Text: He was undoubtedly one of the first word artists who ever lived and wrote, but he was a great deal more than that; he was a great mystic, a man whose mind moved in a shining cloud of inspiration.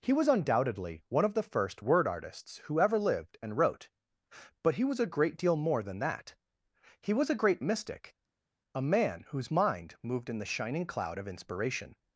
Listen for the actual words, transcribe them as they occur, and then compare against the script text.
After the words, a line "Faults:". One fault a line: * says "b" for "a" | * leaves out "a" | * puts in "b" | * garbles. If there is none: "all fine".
He was undoubtedly one of the first word artists who ever lived and wrote, but he was a great deal more than that; he was a great mystic, a man whose mind moved in the shining cloud of inspiration.
Faults:
* says "the" for "a"